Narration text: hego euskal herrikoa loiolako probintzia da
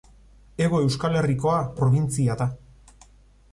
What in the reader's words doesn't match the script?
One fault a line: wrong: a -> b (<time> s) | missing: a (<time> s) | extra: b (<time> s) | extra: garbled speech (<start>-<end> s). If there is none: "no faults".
missing: loiolako (1.6 s)